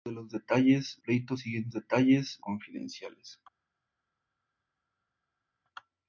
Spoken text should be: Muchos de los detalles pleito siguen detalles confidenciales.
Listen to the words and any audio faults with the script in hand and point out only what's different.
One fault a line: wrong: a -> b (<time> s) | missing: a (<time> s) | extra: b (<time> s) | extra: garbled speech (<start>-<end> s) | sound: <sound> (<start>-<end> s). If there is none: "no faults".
no faults